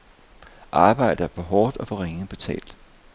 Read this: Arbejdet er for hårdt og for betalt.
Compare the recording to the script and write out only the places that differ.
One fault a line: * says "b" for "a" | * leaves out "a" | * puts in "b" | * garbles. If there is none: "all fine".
* puts in "ringe"